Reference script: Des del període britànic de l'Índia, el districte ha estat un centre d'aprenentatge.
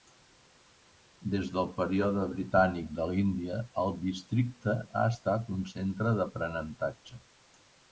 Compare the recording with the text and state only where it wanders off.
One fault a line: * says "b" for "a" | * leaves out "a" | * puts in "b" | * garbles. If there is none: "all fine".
all fine